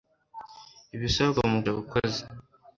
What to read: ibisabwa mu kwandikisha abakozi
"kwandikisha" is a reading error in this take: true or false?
true